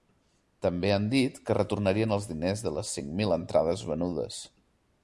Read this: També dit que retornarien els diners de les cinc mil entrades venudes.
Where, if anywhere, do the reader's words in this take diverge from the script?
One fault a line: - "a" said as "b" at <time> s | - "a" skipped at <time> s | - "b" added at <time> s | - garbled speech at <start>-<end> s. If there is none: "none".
- "han" added at 0.9 s